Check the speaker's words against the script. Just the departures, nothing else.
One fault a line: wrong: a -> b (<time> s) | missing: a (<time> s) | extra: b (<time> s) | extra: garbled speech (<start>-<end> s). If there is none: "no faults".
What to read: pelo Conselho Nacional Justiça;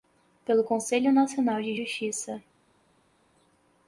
extra: de (1.6 s)